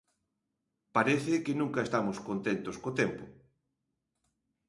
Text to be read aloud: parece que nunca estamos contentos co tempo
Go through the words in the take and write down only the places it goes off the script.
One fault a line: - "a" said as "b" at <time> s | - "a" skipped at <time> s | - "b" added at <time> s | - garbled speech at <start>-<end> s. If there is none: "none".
none